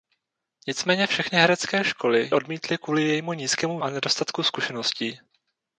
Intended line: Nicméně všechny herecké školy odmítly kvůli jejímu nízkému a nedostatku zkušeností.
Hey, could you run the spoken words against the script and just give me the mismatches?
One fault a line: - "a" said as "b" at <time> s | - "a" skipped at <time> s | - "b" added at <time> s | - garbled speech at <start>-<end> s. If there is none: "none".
none